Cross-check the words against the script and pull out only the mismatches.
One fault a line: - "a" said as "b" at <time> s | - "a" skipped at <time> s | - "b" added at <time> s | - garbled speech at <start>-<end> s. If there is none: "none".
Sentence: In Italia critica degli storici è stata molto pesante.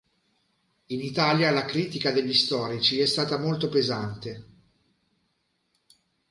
- "la" added at 1.5 s